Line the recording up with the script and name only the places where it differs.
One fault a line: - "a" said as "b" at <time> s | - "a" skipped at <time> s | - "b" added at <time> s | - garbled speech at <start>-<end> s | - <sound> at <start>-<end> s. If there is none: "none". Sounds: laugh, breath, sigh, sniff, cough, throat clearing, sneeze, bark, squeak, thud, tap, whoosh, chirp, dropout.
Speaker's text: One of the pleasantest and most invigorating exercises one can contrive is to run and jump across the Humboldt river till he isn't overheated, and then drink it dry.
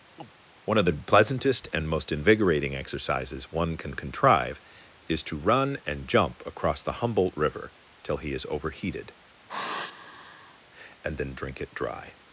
- chirp at 0.2-0.3 s
- "isn't" said as "is" at 8.3 s
- sigh at 9.5-10.6 s